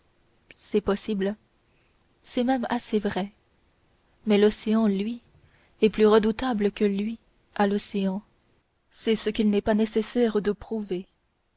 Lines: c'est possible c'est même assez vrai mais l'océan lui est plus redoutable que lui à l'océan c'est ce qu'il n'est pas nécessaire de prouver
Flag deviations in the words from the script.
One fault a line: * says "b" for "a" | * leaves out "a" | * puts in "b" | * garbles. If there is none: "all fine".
all fine